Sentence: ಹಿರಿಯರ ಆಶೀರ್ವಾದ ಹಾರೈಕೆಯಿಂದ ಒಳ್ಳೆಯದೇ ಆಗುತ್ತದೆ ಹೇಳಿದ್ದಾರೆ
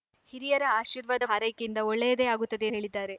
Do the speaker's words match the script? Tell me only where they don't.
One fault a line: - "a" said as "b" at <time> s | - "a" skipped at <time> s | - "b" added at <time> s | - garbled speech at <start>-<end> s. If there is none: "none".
none